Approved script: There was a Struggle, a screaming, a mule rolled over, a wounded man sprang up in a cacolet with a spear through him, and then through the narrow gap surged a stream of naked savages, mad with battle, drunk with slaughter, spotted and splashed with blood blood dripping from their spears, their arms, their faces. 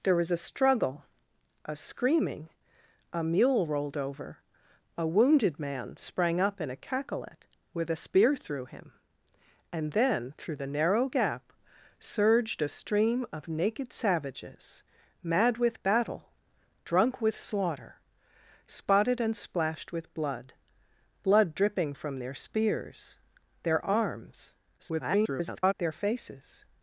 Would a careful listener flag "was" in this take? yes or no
no